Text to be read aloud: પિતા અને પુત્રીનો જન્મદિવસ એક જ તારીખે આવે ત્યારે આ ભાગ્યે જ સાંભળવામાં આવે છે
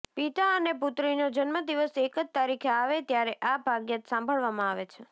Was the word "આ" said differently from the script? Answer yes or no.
no